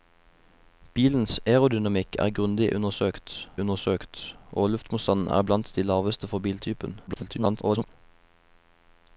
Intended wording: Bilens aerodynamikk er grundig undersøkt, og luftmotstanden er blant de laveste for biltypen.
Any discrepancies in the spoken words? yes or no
yes